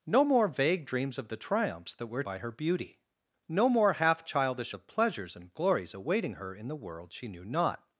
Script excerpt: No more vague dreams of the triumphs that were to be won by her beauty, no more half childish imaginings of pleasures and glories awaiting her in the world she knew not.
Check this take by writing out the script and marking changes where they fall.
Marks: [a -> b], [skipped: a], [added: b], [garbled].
No more vague dreams of the triumphs that were [skipped: to be won] by her beauty, no more half childish [skipped: imaginings] of pleasures and glories awaiting her in the world she knew not.